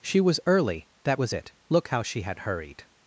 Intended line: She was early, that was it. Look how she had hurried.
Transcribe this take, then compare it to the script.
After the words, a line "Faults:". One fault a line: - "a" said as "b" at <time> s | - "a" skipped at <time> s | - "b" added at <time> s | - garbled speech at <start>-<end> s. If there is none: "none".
She was early, that was it. Look how she had hurried.
Faults:
none